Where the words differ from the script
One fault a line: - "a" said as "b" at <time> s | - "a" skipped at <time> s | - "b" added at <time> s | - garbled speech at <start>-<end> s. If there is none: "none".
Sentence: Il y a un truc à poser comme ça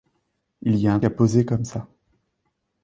- "truc" skipped at 1.0 s